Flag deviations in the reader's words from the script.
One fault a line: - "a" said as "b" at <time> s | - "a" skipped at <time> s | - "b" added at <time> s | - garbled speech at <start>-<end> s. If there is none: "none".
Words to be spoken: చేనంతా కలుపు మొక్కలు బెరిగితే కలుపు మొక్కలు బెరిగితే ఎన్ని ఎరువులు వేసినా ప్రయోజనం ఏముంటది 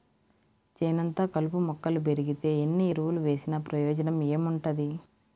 - "కలుపు మొక్కలు బెరిగితే" skipped at 2.5 s